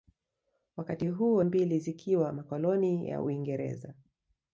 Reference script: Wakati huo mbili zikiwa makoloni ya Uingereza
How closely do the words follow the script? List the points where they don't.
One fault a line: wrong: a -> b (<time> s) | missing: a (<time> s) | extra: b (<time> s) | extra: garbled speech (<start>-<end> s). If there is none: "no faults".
no faults